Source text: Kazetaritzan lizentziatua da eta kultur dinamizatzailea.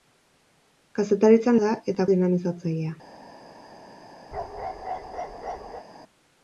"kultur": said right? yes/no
no